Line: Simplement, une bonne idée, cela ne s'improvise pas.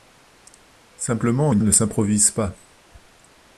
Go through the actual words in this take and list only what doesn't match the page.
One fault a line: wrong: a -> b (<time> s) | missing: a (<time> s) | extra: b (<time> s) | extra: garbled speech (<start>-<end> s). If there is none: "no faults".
missing: bonne idée cela (1.6 s)